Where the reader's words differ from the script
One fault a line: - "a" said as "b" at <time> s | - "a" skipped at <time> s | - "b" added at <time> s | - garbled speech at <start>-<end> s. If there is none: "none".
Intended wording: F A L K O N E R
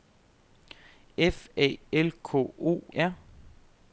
- "N E" skipped at 2.8 s